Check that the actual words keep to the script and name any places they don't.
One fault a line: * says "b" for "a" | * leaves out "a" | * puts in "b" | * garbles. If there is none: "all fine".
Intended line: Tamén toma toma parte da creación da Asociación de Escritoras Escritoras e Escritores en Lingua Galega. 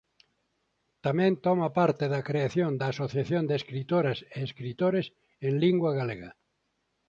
* leaves out "toma"
* leaves out "Escritoras"